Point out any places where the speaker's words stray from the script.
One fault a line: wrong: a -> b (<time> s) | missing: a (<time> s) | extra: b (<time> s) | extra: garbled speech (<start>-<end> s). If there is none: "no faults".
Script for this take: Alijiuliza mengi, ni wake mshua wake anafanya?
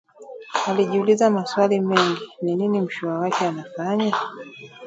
extra: maswali (1.3 s)
wrong: wake -> nini (2.5 s)